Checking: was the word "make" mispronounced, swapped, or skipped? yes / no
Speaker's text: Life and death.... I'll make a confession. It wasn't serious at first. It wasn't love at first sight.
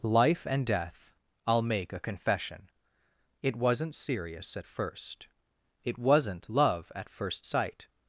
no